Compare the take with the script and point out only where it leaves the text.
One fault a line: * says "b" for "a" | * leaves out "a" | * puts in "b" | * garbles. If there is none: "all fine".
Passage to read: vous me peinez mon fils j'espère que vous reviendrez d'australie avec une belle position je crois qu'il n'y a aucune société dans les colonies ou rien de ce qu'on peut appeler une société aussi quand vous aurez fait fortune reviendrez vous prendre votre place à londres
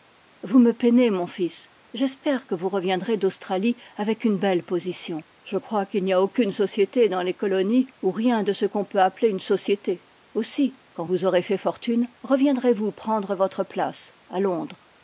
all fine